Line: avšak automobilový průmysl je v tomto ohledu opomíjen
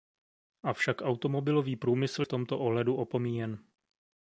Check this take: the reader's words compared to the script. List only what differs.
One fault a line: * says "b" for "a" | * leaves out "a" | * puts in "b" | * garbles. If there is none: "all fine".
* leaves out "je"